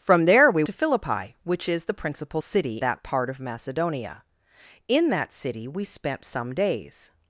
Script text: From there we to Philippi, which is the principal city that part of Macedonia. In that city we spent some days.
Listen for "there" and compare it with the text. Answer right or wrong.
right